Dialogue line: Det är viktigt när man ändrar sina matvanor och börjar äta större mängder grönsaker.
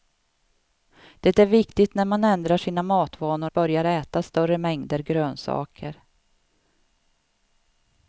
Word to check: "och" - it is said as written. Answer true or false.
false